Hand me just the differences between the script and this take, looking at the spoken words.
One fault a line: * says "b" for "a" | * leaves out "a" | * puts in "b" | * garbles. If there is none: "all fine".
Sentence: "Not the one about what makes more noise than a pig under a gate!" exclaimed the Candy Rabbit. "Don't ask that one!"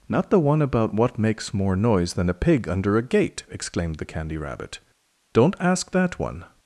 all fine